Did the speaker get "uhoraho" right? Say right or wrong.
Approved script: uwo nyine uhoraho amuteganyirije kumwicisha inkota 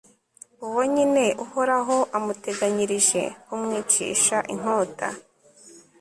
right